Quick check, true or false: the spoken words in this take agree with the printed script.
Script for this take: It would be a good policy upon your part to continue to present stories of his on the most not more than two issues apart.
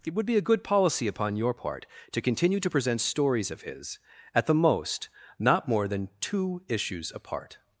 false